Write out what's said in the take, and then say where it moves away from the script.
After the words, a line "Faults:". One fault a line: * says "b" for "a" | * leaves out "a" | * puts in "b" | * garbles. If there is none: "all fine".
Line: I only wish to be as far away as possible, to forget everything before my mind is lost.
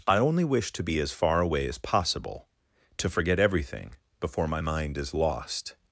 I only wish to be as far away as possible, to forget everything before my mind is lost.
Faults:
all fine